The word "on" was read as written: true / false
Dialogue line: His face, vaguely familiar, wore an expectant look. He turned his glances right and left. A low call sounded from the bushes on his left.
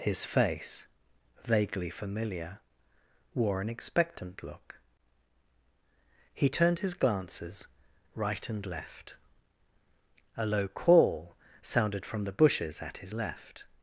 false